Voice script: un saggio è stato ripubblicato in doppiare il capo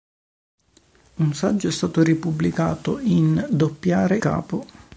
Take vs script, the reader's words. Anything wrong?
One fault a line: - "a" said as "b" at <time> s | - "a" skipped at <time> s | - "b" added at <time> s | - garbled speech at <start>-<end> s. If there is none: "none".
- "il" skipped at 4.2 s